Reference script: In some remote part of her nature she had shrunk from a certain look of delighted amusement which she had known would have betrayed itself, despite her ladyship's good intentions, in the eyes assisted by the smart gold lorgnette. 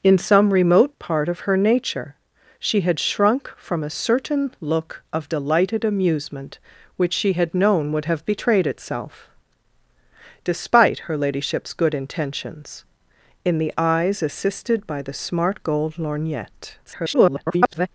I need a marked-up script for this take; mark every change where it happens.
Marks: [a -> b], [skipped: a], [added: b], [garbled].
In some remote part of her nature she had shrunk from a certain look of delighted amusement which she had known would have betrayed itself, despite her ladyship's good intentions, in the eyes assisted by the smart gold lorgnette. [garbled]